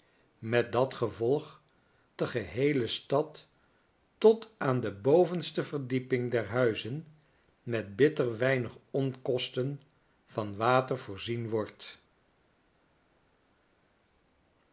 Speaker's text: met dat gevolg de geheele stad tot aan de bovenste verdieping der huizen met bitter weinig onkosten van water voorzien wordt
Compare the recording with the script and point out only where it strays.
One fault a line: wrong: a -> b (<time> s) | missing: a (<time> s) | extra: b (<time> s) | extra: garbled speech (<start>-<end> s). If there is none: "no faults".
no faults